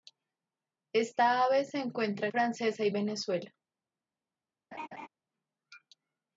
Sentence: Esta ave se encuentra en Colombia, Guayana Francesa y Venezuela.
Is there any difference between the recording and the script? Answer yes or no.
yes